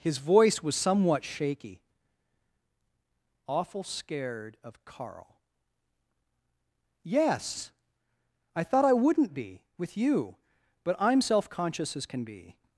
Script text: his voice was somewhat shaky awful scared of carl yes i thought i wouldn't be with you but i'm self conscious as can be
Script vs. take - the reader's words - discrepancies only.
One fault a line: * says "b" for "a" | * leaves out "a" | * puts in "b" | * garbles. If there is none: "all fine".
all fine